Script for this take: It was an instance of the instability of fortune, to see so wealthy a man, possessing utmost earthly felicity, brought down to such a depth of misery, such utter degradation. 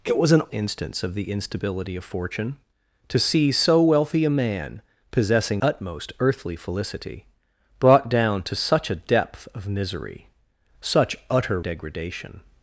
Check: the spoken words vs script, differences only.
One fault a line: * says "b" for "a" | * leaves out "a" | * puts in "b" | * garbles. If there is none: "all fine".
all fine